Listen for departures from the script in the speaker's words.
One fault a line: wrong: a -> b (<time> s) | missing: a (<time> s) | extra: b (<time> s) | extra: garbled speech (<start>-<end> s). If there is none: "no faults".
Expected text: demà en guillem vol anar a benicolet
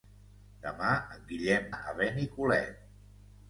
missing: vol anar (1.7 s)